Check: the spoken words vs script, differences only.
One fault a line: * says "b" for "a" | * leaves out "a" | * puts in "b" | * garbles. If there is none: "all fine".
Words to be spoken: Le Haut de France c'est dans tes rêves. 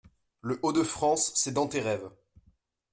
all fine